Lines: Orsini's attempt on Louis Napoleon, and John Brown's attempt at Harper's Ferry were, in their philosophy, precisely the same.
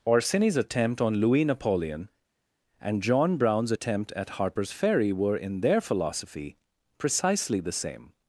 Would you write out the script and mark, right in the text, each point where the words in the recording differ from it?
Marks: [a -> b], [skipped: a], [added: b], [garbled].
Orsini's attempt on Louis Napoleon, and John Brown's attempt at Harper's Ferry were, in their philosophy, precisely the same.